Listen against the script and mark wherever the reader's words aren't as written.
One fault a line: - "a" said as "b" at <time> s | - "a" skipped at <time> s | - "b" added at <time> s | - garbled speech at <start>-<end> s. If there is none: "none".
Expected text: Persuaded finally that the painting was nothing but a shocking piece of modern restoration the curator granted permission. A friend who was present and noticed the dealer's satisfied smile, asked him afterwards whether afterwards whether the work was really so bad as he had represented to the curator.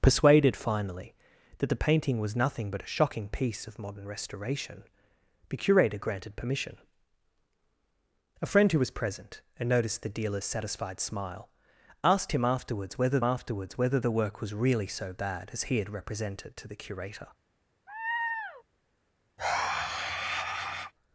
none